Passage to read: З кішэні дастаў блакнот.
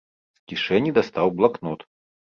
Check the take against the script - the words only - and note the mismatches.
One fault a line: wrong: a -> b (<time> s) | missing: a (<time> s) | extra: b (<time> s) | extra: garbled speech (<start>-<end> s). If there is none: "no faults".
no faults